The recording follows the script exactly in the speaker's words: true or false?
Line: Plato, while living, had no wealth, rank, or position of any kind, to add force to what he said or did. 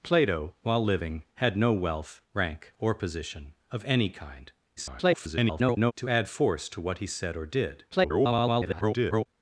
false